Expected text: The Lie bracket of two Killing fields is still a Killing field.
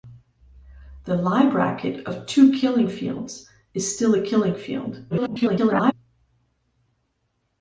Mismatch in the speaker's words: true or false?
true